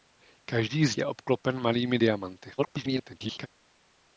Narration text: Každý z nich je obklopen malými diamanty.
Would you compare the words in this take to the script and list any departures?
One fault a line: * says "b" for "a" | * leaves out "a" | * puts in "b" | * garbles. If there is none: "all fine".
* leaves out "nich"
* garbles